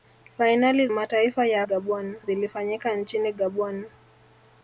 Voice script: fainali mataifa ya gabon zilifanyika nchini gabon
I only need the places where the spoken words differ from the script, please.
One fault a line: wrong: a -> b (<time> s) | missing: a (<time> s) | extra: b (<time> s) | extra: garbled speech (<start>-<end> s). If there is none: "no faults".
no faults